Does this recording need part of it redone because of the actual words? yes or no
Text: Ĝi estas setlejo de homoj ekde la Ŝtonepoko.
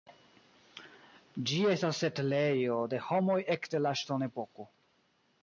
no